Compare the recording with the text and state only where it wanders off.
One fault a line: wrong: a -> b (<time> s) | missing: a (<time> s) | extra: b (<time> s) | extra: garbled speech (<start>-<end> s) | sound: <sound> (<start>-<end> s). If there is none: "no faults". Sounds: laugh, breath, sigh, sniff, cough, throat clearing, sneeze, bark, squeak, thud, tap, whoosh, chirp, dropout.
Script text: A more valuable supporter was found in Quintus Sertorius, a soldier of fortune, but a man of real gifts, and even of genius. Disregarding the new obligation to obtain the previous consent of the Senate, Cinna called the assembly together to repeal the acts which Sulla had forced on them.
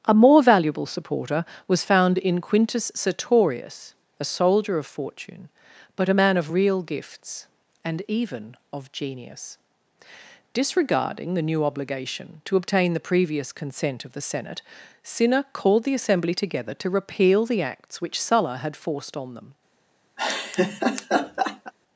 sound: laugh (20.2-21.7 s)